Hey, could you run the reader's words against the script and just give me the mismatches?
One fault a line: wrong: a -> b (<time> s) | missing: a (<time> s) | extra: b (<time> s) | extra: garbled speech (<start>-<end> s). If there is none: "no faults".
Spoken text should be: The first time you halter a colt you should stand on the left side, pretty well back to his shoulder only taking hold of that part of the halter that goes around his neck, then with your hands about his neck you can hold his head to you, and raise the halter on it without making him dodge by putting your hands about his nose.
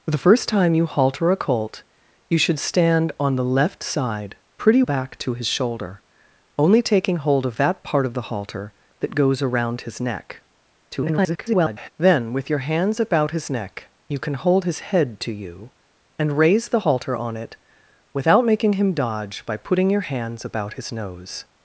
missing: well (4.8 s)
extra: garbled speech (10.9-11.9 s)